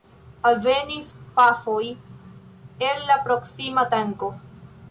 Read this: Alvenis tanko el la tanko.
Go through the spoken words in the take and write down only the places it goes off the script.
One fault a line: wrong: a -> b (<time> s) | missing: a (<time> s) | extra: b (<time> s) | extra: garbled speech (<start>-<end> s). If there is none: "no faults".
wrong: tanko -> pafoj (1.4 s)
extra: proksima (3.3 s)